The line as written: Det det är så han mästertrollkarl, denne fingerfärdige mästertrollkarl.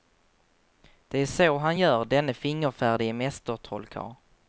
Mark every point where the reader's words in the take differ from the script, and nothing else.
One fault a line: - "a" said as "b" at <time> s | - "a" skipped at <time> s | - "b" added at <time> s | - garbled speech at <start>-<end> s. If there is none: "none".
- "det" skipped at 1.2 s
- "mästertrollkarl" said as "gör" at 1.8 s